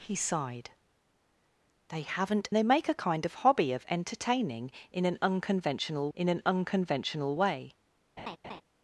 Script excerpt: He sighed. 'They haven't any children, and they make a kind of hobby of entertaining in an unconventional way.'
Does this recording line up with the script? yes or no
no